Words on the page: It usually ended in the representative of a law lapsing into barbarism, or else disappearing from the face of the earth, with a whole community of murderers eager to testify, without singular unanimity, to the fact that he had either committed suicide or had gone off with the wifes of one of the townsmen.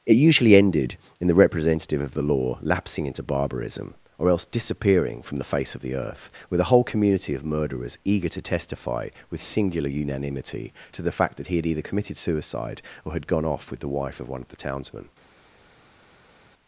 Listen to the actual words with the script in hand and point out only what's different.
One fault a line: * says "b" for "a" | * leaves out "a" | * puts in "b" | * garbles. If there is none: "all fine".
* says "the" for "a"
* says "with" for "without"
* says "wife" for "wifes"